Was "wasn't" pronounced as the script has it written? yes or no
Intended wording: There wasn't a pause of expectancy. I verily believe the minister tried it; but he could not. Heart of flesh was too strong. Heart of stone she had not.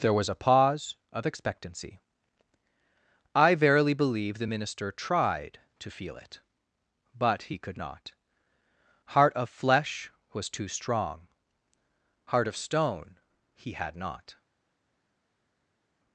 no